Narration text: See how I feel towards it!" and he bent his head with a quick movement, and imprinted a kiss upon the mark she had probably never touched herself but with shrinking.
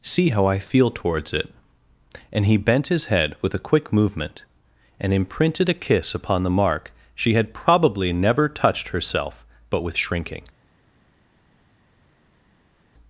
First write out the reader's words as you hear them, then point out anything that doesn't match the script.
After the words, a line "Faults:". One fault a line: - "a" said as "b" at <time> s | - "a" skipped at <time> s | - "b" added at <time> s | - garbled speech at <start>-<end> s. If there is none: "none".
See how I feel towards it!" and he bent his head with a quick movement, and imprinted a kiss upon the mark she had probably never touched herself but with shrinking.
Faults:
none